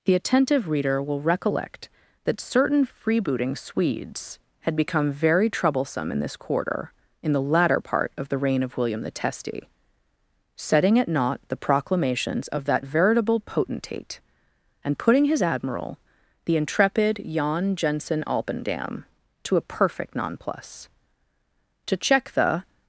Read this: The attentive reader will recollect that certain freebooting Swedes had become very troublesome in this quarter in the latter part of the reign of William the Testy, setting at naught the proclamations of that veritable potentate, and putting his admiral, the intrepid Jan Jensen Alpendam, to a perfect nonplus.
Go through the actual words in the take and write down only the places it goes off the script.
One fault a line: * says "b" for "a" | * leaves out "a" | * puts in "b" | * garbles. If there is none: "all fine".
* puts in "To check the"